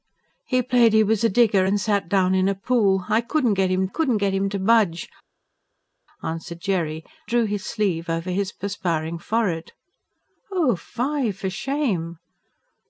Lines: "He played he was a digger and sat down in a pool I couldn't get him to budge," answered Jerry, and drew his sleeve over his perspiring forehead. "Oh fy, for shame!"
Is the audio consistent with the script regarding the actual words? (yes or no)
no